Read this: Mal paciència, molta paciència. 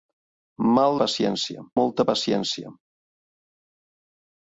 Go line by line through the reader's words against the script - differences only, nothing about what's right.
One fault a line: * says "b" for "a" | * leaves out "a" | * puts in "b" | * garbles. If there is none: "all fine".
all fine